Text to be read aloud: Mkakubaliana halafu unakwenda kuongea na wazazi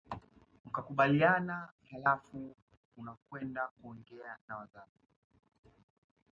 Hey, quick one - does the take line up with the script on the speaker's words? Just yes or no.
yes